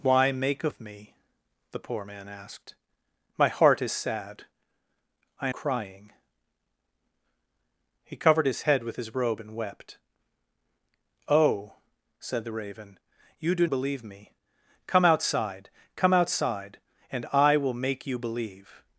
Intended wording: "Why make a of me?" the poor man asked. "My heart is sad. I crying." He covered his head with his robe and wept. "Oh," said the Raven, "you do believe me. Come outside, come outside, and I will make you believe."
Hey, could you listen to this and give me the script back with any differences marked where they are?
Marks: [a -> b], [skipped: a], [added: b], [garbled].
"Why make a of me?" the poor man asked. "My heart is sad. I crying." He covered his head with his robe and wept. "Oh," said the Raven, "you do believe me. Come outside, come outside, and I will make you believe."